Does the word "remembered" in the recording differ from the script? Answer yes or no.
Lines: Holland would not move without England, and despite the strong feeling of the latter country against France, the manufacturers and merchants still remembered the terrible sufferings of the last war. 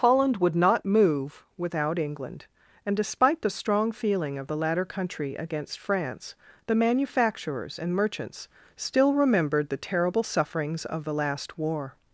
no